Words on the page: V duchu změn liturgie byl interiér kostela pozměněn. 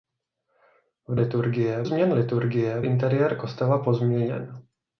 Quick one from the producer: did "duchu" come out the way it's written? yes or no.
no